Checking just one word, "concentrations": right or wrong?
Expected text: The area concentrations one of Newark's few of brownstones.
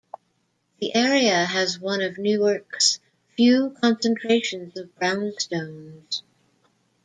wrong